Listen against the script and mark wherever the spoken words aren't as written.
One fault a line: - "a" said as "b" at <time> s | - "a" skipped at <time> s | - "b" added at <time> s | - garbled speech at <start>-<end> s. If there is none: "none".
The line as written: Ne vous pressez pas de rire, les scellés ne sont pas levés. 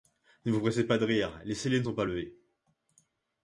none